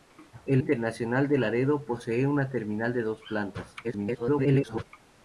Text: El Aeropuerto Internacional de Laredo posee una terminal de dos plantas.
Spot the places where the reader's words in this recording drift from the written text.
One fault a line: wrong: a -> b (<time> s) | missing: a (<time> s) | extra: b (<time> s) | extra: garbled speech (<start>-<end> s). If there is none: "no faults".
missing: Aeropuerto (0.6 s)
extra: garbled speech (3.8-4.9 s)